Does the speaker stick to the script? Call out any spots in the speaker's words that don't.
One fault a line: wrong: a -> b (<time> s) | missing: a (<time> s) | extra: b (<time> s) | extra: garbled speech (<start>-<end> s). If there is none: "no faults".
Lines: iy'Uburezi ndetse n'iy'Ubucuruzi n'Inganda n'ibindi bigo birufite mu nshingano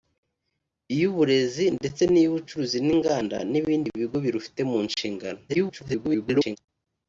extra: garbled speech (5.5-6.6 s)